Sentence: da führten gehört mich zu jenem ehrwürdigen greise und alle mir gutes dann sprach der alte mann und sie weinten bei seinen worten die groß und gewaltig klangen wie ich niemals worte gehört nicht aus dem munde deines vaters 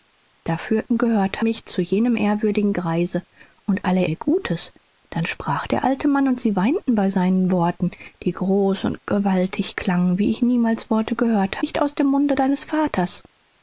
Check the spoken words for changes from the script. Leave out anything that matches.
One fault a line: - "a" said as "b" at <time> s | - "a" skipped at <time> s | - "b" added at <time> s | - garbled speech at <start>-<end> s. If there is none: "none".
none